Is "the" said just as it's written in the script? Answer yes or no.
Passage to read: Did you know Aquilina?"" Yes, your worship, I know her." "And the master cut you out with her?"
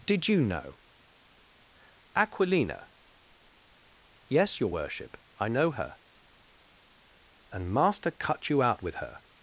no